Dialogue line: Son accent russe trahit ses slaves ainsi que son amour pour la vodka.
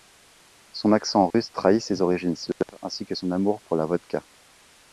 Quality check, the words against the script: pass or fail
fail